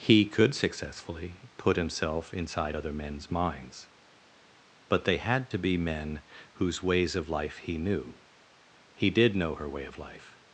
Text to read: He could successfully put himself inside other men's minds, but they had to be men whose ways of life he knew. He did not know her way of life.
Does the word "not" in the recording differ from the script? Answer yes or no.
yes